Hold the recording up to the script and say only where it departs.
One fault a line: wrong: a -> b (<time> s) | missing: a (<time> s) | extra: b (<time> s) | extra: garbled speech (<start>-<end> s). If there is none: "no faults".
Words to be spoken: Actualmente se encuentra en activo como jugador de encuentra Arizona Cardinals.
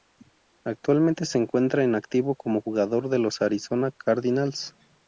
wrong: encuentra -> los (3.2 s)